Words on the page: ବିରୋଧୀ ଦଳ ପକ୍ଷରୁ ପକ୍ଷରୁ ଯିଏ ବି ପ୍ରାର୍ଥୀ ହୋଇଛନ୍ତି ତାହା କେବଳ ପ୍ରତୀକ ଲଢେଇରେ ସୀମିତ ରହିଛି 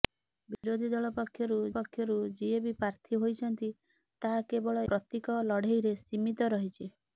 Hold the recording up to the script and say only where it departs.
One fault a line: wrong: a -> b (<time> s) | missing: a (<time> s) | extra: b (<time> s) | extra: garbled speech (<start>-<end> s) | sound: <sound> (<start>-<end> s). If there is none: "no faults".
sound: dropout (0.5-0.6 s)